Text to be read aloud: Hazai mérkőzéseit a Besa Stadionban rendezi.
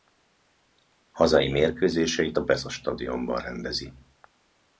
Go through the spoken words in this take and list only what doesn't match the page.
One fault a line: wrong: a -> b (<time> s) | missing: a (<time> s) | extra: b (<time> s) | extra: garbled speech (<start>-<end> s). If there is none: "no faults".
no faults